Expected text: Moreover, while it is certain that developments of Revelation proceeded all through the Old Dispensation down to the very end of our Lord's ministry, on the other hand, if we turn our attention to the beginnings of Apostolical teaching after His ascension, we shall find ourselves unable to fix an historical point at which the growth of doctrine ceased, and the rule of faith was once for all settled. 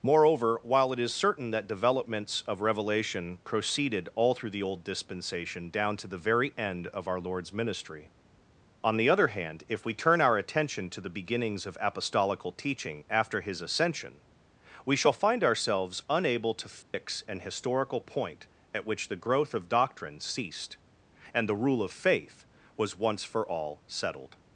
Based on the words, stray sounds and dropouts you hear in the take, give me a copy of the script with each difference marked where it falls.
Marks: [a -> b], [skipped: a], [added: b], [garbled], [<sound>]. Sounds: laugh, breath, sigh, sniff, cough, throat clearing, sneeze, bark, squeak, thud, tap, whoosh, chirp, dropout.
Moreover, while it is certain that developments of Revelation proceeded all through the Old Dispensation down to the very end of our Lord's ministry, on the other hand, if we turn our attention to the beginnings of Apostolical teaching after His ascension, we shall find ourselves unable to fix [dropout] an historical point at which the growth of doctrine ceased, and the rule of faith was once for all settled.